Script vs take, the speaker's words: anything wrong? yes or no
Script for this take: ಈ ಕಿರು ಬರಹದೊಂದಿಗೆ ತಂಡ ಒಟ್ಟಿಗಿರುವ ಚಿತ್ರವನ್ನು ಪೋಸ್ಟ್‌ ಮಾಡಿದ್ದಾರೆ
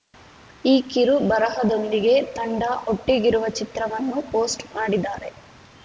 no